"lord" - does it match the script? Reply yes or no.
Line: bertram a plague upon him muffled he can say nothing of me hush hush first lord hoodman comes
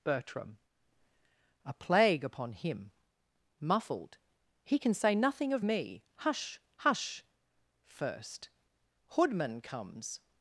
no